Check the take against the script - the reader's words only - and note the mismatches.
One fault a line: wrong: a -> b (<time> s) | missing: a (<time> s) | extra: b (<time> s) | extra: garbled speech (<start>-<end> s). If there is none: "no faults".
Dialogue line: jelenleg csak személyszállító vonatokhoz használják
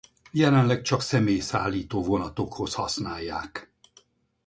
no faults